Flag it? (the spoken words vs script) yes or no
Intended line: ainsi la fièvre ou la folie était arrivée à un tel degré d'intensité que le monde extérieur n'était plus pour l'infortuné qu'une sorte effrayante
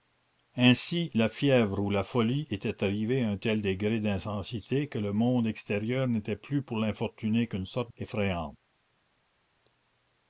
no